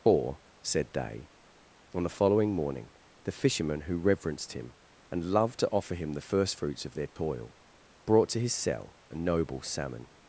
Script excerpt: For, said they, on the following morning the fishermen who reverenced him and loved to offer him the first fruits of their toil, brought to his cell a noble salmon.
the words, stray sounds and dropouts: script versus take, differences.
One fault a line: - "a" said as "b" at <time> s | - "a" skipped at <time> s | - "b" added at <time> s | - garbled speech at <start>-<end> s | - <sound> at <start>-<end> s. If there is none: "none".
- dropout at 7.1-7.2 s